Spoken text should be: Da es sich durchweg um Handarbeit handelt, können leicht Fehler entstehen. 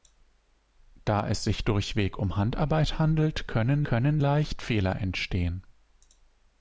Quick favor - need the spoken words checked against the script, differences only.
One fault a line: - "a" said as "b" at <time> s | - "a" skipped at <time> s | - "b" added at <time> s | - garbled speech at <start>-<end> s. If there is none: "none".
- "können" added at 3.9 s